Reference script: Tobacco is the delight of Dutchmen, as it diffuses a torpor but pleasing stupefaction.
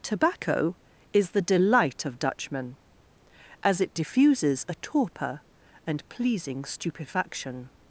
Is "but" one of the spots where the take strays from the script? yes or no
yes